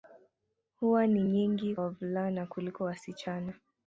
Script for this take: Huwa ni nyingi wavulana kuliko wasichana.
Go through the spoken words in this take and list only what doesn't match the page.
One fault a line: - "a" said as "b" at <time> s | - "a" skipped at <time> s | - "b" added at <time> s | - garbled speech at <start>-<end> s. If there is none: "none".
none